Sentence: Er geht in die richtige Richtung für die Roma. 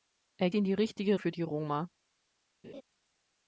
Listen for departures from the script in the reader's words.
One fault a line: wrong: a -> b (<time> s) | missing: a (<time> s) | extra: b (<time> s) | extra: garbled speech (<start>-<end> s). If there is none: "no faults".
missing: geht (0.5 s)
missing: Richtung (1.2 s)